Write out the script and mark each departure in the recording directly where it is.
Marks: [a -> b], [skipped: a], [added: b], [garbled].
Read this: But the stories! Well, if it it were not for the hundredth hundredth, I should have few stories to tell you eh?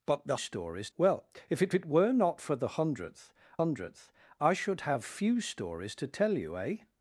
But the stories! Well, if it it were not for the hundredth hundredth, I should have few stories to tell you eh?